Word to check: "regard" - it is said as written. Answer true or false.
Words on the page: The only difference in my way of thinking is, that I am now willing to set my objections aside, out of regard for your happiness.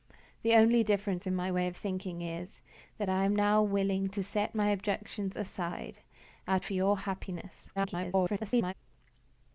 false